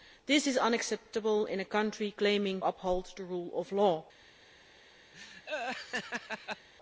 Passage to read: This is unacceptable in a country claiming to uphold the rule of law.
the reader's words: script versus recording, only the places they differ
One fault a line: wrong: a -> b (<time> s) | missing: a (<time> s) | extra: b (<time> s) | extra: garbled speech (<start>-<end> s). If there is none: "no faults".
missing: to (2.6 s)